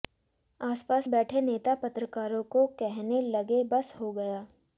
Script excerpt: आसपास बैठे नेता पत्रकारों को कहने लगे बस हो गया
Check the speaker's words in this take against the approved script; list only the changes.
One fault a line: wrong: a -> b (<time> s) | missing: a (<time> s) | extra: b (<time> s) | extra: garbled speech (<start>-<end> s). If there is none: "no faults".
no faults